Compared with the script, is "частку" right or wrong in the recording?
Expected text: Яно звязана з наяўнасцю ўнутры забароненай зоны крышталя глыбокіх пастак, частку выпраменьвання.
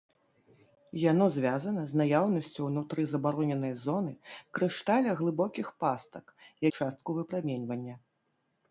right